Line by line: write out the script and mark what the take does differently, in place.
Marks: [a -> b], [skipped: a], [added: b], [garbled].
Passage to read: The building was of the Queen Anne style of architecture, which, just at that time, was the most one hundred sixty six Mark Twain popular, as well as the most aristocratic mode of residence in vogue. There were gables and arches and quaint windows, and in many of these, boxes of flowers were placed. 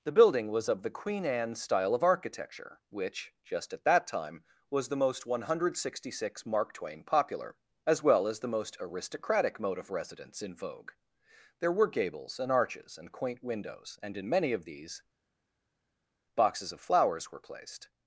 The building was of the Queen Anne style of architecture, which, just at that time, was the most one hundred sixty six Mark Twain popular, as well as the most aristocratic mode of residence in vogue. There were gables and arches and quaint windows, and in many of these, boxes of flowers were placed.